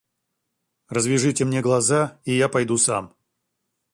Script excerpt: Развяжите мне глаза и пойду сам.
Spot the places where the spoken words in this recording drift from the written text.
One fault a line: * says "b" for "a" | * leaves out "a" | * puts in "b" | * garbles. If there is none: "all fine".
* puts in "я"